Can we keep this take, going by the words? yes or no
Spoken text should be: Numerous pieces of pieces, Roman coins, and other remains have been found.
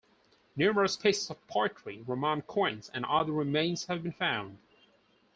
no